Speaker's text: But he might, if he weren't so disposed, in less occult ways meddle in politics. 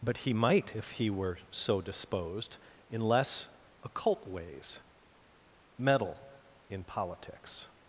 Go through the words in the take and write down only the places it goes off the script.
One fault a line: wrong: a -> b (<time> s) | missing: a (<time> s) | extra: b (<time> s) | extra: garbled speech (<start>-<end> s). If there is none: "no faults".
wrong: weren't -> were (1.1 s)